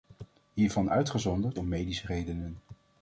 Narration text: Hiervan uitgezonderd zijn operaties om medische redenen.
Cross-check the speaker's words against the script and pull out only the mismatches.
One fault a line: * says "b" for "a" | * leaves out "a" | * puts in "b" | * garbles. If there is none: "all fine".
* leaves out "zijn operaties"